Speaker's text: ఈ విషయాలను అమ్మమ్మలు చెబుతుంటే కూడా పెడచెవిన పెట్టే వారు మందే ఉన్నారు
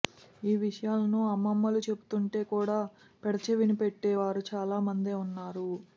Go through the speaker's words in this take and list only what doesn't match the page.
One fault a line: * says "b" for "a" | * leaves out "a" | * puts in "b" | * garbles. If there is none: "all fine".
* puts in "చాలా"